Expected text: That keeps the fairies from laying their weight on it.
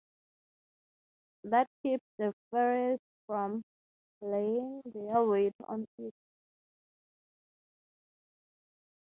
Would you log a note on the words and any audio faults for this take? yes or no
no